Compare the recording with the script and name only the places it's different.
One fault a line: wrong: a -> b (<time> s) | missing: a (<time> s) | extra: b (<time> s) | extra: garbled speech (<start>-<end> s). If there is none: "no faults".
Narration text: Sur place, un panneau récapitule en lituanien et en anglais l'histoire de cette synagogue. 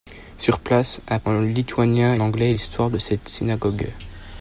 missing: panneau récapitule (1.2 s)
missing: et en (2.1 s)